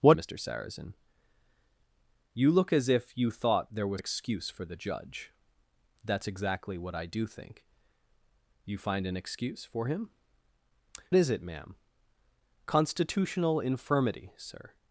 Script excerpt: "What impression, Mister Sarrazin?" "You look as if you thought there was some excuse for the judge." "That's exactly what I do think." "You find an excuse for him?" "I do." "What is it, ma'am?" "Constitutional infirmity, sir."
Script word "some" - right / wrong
wrong